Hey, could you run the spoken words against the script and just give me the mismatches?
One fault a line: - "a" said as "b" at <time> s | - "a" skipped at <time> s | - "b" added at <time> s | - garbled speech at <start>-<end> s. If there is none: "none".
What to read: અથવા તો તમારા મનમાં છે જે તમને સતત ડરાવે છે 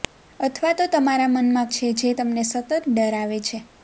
none